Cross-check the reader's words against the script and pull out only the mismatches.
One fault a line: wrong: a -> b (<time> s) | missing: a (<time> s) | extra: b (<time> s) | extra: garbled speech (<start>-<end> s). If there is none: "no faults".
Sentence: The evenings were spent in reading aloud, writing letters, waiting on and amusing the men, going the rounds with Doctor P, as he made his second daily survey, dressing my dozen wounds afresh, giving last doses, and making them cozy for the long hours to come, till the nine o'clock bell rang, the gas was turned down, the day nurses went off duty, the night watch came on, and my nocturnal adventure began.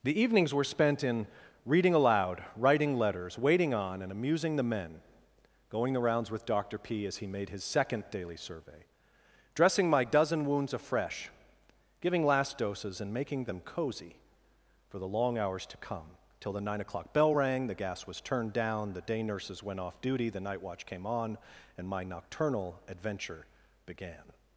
no faults